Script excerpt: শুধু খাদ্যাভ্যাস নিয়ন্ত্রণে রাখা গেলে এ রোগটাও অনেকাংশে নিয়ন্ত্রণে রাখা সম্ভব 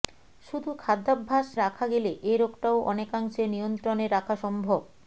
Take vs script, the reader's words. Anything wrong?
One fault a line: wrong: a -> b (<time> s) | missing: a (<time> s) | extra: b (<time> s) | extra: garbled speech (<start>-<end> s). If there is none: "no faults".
missing: নিয়ন্ত্রণে (1.5 s)